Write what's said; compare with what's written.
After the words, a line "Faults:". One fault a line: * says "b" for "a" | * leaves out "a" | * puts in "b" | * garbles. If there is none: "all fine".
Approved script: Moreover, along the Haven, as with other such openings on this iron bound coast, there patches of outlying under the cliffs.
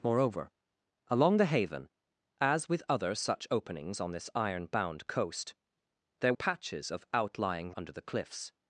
Moreover, along the Haven, as with other such openings on this iron bound coast, there patches of outlying under the cliffs.
Faults:
all fine